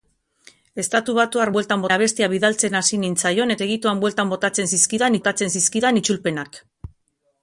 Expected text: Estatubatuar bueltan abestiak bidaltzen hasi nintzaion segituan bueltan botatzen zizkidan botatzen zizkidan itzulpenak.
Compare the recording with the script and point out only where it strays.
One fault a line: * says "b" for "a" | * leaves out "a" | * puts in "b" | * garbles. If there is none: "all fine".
all fine